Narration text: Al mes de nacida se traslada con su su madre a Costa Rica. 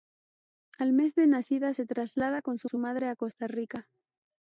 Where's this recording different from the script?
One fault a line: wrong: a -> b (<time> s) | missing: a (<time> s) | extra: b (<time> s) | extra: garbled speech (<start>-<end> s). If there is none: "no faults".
no faults